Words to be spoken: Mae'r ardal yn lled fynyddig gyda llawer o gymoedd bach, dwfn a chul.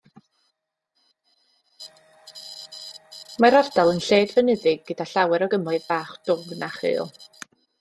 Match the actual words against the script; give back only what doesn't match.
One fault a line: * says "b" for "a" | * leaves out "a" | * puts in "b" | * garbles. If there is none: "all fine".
all fine